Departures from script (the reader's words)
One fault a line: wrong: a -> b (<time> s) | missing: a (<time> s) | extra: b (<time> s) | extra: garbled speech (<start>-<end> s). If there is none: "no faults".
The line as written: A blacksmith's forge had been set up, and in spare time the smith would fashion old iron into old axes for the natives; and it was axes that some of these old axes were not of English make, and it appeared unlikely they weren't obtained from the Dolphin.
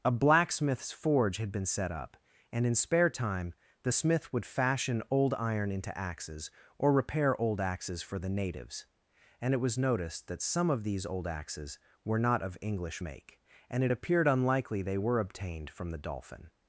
extra: axes or repair (6.0 s)
wrong: axes -> noticed (9.8 s)
wrong: weren't -> were (15.0 s)